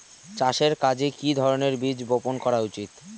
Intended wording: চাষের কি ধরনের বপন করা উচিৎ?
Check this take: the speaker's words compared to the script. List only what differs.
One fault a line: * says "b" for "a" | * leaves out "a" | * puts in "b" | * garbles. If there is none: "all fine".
* puts in "কাজে"
* puts in "বীজ"